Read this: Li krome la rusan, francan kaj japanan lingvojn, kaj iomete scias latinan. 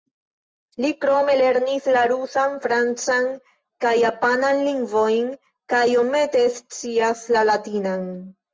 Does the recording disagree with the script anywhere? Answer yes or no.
yes